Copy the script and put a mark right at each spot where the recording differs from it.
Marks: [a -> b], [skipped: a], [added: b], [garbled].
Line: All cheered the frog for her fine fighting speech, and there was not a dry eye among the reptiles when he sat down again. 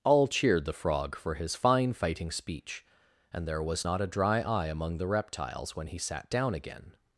All cheered the frog for [her -> his] fine fighting speech, and there was not a dry eye among the reptiles when he sat down again.